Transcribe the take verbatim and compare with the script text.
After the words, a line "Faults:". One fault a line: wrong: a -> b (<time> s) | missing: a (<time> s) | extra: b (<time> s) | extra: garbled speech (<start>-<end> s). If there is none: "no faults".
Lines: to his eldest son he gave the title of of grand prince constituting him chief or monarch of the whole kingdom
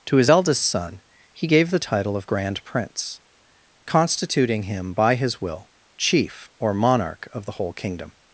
to his eldest son he gave the title of grand prince constituting him by his will chief or monarch of the whole kingdom
Faults:
missing: of (2.3 s)
extra: by his will (4.9 s)